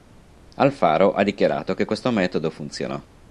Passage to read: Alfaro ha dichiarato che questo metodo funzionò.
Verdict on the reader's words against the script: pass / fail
pass